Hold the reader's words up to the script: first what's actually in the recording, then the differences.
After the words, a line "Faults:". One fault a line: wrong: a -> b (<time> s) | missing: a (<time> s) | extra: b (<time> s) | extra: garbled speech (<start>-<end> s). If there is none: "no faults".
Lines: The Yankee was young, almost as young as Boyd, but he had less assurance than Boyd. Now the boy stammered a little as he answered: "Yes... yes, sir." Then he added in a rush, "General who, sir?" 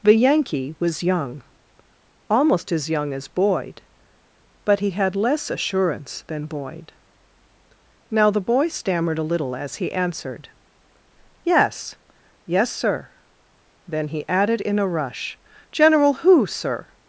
The Yankee was young, almost as young as Boyd, but he had less assurance than Boyd. Now the boy stammered a little as he answered: "Yes... yes, sir." Then he added in a rush, "General who, sir?"
Faults:
no faults